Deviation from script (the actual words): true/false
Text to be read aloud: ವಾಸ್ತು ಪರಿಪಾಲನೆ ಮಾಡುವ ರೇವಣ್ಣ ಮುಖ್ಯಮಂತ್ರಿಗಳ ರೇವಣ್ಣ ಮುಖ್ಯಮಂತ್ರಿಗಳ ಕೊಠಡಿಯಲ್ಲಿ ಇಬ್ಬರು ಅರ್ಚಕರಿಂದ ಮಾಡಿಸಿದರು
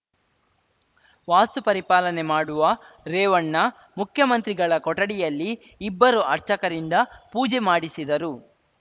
true